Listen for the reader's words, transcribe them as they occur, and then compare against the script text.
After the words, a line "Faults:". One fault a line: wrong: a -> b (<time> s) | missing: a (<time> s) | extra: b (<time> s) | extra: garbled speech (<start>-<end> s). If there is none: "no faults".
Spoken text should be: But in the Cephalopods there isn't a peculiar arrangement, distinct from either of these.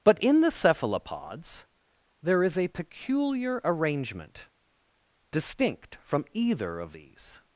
But in the Cephalopods there is a peculiar arrangement, distinct from either of these.
Faults:
wrong: isn't -> is (2.4 s)